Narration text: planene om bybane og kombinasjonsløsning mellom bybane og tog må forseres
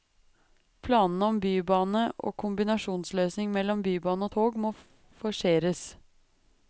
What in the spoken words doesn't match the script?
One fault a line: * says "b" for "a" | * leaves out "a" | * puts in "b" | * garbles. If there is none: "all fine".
all fine